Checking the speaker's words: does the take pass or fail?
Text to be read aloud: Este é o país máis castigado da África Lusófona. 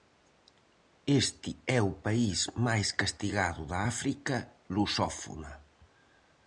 pass